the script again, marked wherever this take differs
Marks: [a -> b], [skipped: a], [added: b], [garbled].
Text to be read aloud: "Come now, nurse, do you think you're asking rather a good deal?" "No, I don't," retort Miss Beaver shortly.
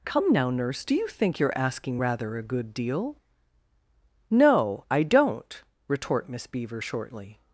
"Come now, nurse, do you think you're asking rather a good deal?" "No, I don't," retort Miss Beaver shortly.